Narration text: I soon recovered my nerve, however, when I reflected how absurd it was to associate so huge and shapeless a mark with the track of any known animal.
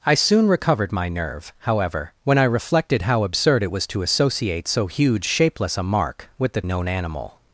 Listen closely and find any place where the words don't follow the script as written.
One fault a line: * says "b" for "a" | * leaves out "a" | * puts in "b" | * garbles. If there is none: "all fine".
* leaves out "and"
* leaves out "track of any"